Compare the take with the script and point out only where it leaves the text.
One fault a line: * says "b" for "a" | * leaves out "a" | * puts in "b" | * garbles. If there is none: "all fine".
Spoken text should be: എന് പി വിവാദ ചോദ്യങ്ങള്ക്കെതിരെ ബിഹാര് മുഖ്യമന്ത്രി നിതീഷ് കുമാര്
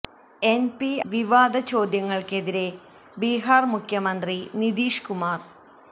all fine